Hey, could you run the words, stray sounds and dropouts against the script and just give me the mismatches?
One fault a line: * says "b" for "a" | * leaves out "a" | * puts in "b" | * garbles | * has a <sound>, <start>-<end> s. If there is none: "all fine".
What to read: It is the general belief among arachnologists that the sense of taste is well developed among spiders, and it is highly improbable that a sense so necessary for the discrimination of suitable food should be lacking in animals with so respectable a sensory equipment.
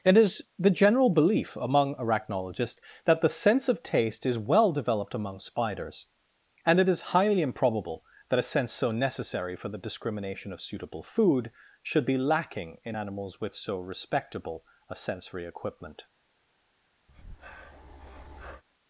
* has a breath, 17.1-18.6 s